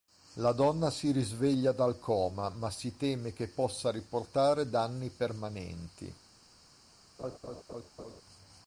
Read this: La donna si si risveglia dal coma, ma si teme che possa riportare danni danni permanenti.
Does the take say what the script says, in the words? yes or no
no